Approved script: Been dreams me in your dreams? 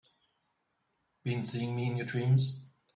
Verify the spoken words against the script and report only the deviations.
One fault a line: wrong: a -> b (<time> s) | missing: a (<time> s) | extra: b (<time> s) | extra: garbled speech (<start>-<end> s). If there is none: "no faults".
wrong: dreams -> seeing (1.4 s)